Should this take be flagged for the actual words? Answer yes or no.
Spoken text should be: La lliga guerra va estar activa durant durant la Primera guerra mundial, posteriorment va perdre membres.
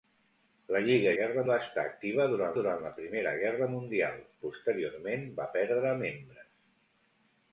no